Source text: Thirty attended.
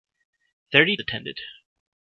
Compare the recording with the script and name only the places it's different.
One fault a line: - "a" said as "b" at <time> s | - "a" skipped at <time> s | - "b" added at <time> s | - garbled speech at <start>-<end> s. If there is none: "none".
none